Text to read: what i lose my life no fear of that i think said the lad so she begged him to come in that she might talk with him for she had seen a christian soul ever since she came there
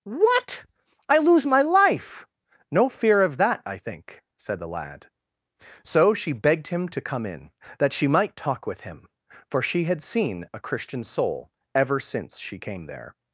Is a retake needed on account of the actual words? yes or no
no